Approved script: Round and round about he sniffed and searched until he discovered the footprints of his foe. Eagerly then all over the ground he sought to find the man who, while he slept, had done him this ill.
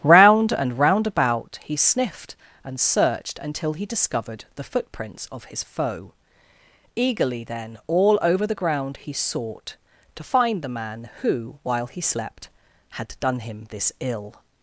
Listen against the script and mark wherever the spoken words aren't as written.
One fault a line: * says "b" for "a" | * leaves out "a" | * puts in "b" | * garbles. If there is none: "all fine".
all fine